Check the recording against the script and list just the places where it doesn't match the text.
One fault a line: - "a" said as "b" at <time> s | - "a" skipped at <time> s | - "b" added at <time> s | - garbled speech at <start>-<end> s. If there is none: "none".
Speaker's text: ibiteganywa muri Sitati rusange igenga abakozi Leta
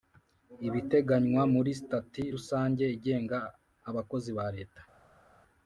- "ba" added at 4.4 s